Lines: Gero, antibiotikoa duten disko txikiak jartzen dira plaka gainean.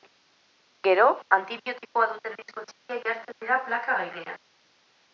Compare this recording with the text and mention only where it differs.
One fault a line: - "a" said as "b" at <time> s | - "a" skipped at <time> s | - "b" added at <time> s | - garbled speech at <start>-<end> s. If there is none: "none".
none